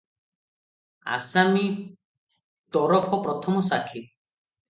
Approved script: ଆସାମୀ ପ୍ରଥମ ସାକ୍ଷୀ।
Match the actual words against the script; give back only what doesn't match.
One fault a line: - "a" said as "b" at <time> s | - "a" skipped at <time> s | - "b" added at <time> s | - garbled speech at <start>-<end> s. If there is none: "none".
- "ତରଫ" added at 2.7 s